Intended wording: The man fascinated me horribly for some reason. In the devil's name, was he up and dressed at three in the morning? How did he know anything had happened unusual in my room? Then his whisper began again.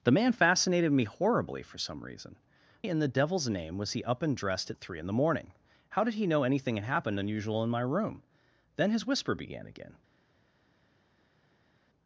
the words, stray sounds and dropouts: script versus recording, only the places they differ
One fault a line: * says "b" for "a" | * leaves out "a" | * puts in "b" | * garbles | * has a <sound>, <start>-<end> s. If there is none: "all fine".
all fine